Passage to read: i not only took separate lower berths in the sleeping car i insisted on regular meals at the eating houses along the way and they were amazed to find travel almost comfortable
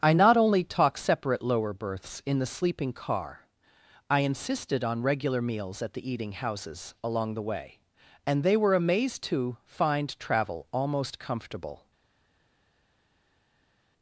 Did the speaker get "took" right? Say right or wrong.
wrong